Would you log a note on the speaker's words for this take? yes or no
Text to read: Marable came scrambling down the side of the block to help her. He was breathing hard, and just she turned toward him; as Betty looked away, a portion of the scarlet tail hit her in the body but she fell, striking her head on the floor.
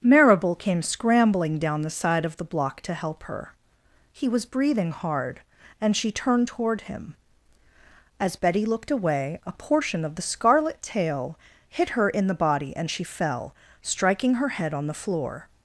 yes